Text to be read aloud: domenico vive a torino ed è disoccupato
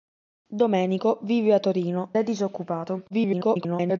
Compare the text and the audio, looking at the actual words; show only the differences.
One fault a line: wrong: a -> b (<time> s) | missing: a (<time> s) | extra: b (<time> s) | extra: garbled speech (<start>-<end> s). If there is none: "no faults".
missing: ed (2.1 s)
extra: garbled speech (3.1-4.0 s)